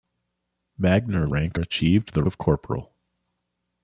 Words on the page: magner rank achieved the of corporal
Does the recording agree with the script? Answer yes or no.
yes